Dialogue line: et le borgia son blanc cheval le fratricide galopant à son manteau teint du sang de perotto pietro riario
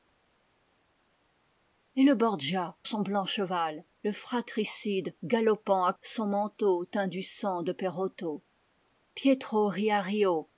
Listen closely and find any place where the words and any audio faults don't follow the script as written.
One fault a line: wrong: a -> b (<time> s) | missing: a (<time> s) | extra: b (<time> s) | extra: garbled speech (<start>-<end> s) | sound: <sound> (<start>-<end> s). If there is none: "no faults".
no faults